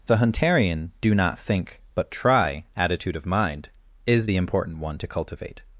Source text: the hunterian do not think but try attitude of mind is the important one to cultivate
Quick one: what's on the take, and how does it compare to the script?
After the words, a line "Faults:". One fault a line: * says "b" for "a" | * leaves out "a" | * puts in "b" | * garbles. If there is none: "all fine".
the hunterian do not think but try attitude of mind is the important one to cultivate
Faults:
all fine